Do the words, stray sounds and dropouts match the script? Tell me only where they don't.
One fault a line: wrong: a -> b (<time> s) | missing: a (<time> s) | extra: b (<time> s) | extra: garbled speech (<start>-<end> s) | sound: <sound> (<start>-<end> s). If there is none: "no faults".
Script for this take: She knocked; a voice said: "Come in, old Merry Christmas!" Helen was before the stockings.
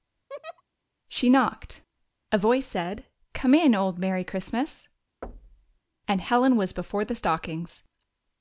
sound: laugh (0.3-0.6 s)
sound: thud (5.2-5.8 s)
extra: and (6.0 s)